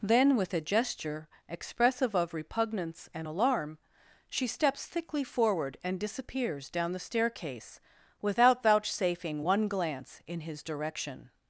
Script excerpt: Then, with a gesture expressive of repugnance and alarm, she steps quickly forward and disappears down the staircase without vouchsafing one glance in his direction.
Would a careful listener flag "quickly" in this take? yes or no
yes